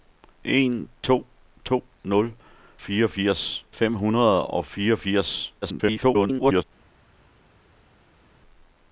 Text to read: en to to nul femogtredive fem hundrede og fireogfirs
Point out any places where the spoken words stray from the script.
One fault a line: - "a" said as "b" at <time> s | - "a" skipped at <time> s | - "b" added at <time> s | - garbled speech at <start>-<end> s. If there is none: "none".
- "femogtredive" said as "fireogfirs" at 2.8 s
- garbled speech at 5.6-6.6 s